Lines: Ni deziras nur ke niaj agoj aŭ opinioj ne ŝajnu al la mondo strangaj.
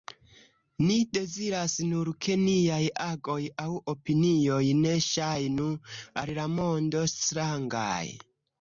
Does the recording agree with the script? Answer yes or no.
yes